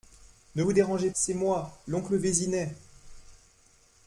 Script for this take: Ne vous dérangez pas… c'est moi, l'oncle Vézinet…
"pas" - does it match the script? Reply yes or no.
no